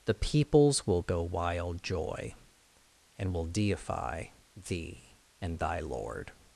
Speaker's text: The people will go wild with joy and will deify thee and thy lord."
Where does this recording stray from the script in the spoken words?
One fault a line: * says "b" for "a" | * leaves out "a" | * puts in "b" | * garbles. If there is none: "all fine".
* says "peoples" for "people"
* leaves out "with"